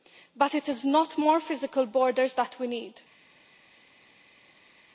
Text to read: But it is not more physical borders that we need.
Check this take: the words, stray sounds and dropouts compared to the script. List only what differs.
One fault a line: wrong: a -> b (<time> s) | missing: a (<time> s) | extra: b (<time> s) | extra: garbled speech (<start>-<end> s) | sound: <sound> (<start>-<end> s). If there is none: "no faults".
no faults